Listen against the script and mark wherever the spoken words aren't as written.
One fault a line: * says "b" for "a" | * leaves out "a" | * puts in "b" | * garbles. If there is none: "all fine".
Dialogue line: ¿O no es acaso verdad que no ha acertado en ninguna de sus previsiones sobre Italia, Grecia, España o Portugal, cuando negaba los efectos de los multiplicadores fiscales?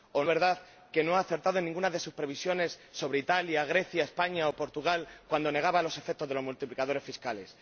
* leaves out "no es acaso"